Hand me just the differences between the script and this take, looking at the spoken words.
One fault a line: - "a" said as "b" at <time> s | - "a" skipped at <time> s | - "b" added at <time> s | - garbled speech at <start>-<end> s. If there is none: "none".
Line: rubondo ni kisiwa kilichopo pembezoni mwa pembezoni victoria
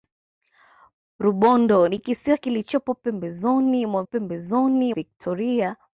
none